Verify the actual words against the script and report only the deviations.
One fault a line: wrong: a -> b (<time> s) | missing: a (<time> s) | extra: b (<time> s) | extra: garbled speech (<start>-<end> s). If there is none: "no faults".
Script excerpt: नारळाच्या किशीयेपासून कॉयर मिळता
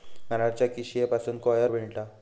no faults